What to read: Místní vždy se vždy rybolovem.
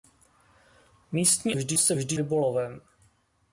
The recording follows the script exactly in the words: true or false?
true